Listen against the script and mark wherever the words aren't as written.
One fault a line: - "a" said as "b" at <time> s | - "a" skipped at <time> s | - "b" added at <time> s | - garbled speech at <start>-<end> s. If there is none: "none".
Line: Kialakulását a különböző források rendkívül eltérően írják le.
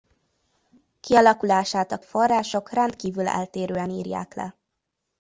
- "különböző" skipped at 2.0 s